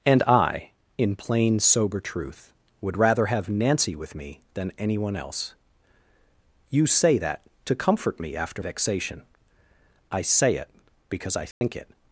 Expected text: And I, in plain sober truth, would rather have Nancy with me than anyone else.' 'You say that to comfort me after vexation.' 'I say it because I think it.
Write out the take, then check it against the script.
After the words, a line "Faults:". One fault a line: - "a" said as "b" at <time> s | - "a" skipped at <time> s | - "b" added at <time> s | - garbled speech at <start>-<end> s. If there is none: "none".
And I, in plain sober truth, would rather have Nancy with me than anyone else.' 'You say that to comfort me after vexation.' 'I say it because I think it.
Faults:
none